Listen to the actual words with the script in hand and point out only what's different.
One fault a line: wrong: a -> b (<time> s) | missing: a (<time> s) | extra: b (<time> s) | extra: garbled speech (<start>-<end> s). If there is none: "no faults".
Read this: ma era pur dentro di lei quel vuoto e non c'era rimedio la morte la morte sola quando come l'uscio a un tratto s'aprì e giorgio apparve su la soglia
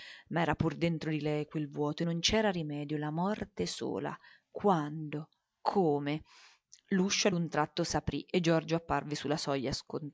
missing: la morte (3.7 s)